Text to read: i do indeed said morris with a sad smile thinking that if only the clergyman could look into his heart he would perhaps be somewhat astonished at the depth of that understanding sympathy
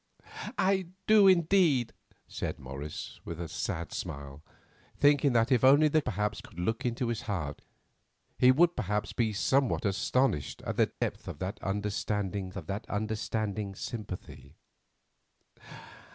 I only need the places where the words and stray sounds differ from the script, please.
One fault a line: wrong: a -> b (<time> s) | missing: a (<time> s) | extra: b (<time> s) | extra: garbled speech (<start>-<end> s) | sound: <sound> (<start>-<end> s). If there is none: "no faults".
wrong: clergyman -> perhaps (6.0 s)
sound: dropout (10.9-11.0 s)
extra: of that understanding (12.6 s)